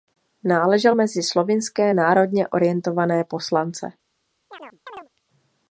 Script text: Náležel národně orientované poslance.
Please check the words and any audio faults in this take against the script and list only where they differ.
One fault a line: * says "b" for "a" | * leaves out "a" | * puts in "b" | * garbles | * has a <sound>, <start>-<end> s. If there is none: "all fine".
* puts in "mezi slovinské"
* has a chirp, 4.5-5.1 s